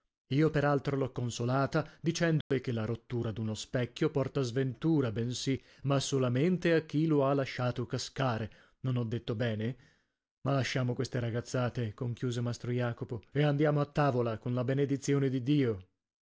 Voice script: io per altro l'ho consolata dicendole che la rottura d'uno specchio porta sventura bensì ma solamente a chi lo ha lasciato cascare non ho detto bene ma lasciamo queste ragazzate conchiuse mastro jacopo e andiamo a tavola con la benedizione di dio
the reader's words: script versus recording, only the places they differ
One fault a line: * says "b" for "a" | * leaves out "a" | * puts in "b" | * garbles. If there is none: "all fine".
all fine